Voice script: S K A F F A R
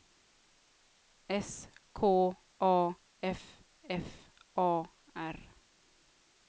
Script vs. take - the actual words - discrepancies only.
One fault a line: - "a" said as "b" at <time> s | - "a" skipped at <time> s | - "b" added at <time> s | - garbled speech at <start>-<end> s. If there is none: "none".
none